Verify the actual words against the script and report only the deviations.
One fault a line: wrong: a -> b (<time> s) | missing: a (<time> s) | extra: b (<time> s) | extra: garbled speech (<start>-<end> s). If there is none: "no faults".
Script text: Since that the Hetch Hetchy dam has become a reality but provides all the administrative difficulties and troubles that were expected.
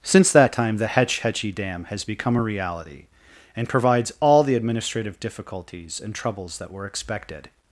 extra: time (0.5 s)
wrong: but -> and (3.6 s)